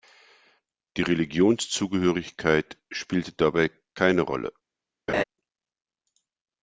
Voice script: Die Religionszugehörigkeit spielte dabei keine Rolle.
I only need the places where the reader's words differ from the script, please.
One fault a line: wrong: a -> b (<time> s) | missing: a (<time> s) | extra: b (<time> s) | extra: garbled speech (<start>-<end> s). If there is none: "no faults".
no faults